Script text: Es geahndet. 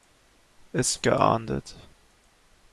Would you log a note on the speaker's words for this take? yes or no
no